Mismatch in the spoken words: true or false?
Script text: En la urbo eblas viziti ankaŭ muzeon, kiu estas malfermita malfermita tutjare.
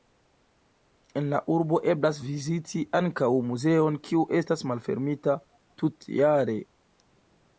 true